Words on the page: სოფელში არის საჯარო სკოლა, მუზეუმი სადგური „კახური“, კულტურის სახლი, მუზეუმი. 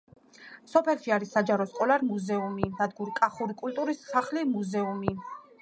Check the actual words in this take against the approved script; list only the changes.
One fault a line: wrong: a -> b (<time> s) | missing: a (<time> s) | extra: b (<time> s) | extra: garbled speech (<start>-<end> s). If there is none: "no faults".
no faults